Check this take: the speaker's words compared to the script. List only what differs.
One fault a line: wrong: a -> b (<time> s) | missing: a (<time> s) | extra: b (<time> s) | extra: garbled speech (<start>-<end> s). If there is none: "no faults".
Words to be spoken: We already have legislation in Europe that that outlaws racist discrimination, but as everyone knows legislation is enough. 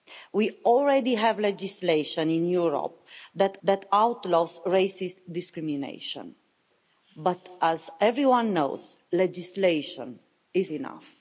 no faults